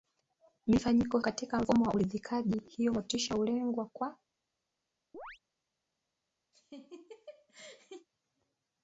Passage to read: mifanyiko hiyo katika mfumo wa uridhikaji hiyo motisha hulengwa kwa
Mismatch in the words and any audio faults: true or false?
true